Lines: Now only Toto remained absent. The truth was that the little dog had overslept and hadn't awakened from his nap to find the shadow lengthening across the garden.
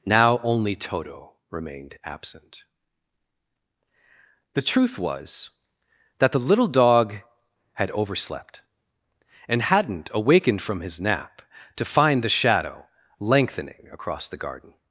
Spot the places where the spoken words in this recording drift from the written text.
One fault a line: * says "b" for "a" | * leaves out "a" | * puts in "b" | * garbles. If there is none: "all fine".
all fine